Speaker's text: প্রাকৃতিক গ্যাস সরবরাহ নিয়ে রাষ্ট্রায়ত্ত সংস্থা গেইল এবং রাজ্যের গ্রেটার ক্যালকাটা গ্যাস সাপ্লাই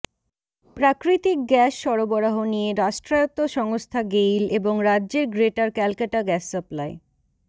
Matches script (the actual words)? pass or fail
pass